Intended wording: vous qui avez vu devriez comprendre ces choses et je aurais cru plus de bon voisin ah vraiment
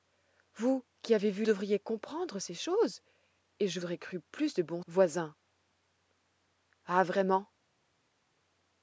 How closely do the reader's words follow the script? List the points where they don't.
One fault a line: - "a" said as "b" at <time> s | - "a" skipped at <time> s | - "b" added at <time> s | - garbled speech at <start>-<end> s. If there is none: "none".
none